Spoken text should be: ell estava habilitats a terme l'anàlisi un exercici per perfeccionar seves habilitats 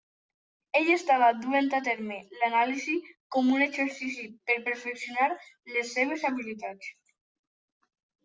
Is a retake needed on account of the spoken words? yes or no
yes